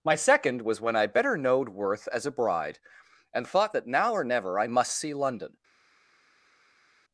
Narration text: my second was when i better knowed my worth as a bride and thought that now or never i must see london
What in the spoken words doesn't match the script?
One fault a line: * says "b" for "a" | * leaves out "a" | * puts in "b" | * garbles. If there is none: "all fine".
* leaves out "my"